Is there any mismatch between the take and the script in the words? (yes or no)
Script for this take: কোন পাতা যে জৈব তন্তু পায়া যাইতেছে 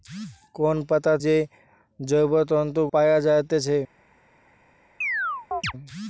no